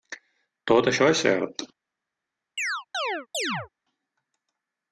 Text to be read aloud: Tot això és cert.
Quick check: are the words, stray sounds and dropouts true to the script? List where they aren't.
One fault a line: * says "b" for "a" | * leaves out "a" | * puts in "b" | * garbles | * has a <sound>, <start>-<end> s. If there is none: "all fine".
* has a chirp, 2.6-3.7 s